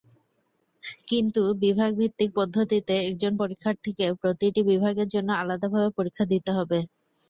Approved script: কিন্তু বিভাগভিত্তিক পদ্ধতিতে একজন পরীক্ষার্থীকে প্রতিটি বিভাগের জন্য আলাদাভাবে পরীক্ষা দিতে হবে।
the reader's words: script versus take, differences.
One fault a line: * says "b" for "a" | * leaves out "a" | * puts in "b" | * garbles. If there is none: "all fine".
all fine